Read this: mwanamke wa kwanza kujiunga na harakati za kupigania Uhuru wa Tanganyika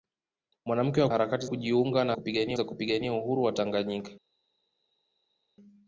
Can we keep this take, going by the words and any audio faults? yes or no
no